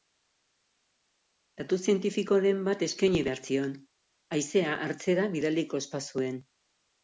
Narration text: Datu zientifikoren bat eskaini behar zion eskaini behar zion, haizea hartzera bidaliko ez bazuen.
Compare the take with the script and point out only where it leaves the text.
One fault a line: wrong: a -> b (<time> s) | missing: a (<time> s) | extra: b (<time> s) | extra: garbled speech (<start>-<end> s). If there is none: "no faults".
missing: eskaini behar zion (3.8 s)